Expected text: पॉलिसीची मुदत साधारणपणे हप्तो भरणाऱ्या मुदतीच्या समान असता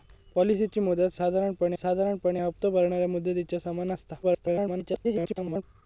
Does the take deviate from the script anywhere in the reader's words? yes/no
yes